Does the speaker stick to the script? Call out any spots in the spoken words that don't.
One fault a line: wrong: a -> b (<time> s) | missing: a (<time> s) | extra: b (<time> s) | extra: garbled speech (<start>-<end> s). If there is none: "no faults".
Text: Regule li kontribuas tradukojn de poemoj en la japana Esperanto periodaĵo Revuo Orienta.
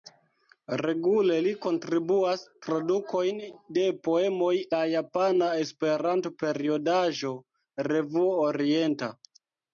missing: en (4.5 s)